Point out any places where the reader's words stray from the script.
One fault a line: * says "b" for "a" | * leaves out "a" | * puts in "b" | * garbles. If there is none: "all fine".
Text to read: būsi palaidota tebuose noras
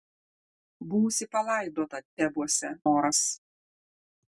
all fine